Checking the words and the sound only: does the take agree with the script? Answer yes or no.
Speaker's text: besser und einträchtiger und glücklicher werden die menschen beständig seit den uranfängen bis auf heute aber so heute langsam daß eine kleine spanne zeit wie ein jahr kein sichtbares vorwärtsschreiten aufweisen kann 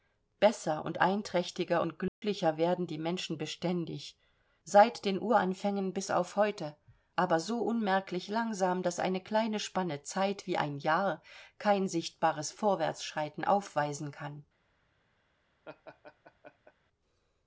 no